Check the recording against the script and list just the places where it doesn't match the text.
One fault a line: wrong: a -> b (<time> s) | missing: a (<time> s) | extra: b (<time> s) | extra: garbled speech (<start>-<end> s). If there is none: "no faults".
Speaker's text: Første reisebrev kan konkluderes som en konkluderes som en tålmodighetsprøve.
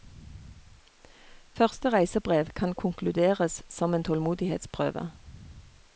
missing: konkluderes som en (4.0 s)